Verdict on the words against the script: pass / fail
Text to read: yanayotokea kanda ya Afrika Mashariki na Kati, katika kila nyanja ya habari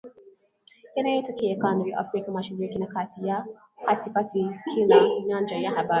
pass